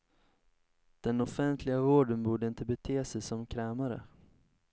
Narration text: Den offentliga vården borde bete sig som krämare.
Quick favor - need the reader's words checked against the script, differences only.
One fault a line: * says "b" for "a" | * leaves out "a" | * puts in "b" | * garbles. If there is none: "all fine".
* puts in "inte"